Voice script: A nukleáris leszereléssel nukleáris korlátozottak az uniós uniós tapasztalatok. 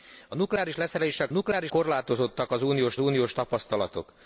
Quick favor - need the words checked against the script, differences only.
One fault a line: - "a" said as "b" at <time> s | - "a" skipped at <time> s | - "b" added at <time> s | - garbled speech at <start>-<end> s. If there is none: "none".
none